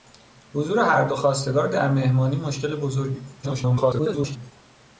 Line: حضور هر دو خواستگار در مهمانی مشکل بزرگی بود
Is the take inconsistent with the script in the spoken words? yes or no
yes